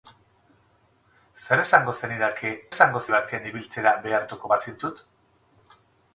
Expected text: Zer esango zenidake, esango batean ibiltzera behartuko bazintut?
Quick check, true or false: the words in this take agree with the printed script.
true